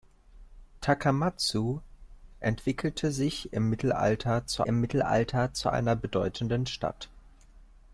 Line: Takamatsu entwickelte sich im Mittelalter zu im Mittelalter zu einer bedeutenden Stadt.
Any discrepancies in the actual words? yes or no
no